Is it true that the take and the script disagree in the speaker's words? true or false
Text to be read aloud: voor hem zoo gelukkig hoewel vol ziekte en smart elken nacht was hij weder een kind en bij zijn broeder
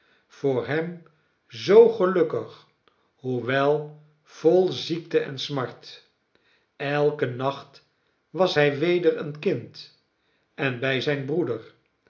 false